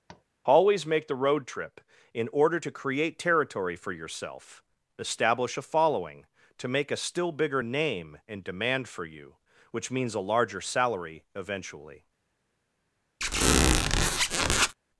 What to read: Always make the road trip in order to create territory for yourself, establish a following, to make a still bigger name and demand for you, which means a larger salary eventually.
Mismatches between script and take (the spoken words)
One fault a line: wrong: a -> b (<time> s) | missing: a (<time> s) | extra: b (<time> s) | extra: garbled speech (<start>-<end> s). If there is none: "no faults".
no faults